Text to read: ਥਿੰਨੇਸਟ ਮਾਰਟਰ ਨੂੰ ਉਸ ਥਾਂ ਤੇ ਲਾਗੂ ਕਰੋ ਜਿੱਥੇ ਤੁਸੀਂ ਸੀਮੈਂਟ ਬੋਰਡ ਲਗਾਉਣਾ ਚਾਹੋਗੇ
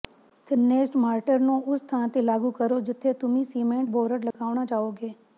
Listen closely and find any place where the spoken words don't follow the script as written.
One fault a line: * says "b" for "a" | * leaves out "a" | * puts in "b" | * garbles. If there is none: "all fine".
all fine